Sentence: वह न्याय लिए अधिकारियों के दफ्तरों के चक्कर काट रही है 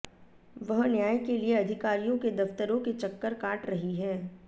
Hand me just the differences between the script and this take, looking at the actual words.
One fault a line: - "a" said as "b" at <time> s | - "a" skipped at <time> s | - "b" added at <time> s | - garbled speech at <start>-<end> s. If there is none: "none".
- "के" added at 1.2 s